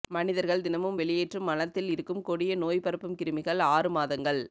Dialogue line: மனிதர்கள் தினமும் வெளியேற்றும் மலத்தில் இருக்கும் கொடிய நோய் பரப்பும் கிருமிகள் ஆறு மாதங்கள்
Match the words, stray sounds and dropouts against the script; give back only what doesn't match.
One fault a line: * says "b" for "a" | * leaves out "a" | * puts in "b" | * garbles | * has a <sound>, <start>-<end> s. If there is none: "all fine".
all fine